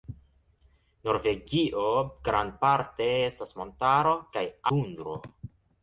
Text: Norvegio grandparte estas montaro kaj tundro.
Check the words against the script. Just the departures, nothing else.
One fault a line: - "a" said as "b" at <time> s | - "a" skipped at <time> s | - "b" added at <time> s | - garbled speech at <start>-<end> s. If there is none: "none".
none